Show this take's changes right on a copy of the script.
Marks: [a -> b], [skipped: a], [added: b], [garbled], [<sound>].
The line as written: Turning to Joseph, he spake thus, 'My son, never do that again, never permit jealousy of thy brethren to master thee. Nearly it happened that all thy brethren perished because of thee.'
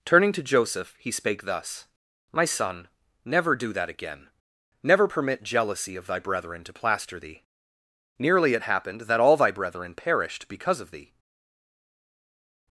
Turning to Joseph, he spake thus, 'My son, never do that again, never permit jealousy of thy brethren to [master -> plaster] thee. Nearly it happened that all thy brethren perished because of thee.'